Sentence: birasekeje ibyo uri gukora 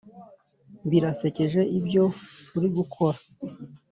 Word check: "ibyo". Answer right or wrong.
right